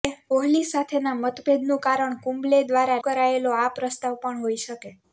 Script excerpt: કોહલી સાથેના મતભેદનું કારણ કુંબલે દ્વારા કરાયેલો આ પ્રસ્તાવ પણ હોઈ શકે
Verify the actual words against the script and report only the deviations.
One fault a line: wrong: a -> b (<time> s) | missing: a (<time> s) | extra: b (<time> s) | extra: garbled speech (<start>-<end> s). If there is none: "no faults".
no faults